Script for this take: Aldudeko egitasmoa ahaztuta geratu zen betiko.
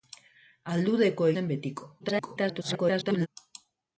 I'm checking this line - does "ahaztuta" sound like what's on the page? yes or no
no